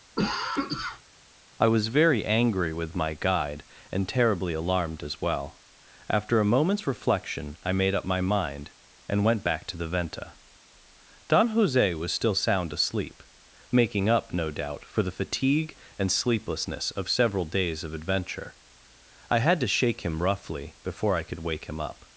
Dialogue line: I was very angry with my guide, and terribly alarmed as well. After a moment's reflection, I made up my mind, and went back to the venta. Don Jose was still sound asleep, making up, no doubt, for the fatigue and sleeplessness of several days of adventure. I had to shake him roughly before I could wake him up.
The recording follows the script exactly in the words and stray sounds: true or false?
false